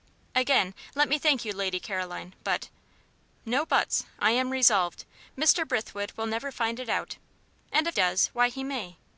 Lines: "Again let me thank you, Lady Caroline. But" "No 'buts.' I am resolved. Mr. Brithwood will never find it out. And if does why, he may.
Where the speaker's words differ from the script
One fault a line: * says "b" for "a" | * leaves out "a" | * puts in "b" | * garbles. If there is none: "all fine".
all fine